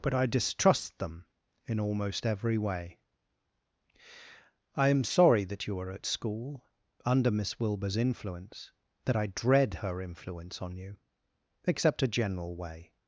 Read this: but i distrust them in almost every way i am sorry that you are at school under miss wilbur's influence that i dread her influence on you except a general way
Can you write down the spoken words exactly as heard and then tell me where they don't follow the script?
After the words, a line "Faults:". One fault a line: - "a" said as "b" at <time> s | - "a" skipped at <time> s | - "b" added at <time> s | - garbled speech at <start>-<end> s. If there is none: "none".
but i distrust them in almost every way i am sorry that you are at school under miss wilbur's influence that i dread her influence on you except a general way
Faults:
none